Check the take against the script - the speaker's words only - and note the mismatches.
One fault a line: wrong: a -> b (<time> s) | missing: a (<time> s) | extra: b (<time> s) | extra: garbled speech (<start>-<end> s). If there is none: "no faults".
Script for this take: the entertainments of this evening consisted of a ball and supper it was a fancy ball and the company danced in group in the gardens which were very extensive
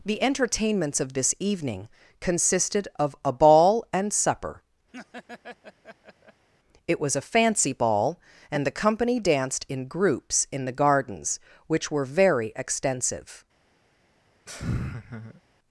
wrong: group -> groups (9.9 s)